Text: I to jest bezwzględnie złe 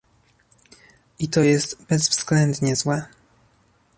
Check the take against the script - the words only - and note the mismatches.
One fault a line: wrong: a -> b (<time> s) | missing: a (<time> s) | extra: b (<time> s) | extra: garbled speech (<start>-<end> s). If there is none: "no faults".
no faults